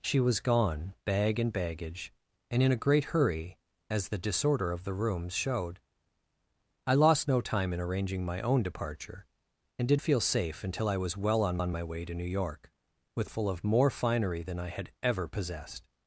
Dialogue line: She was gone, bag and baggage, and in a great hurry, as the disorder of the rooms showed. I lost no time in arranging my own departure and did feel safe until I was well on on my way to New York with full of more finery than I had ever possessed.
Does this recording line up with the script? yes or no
yes